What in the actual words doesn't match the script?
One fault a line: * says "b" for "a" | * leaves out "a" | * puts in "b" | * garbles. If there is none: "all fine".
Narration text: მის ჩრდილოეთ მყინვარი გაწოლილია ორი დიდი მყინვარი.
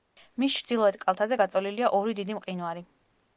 * says "კალთაზე" for "მყინვარი"